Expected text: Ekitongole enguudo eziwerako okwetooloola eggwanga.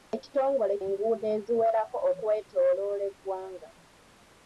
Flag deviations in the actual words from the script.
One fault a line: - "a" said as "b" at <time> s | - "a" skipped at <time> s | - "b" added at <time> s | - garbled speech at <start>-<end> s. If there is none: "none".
none